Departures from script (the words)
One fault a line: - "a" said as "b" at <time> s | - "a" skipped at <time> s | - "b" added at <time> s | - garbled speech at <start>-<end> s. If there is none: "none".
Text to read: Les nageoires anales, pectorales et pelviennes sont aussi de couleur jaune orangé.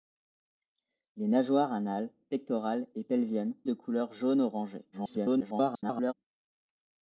- "sont aussi" skipped at 3.5 s
- garbled speech at 4.9-6.1 s